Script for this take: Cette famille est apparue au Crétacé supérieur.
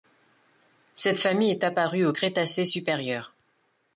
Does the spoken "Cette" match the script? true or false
true